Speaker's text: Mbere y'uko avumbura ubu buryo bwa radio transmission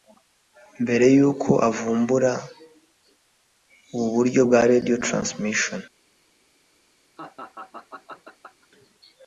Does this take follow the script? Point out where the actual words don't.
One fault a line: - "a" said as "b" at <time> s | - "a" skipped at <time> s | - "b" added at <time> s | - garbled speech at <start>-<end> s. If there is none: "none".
none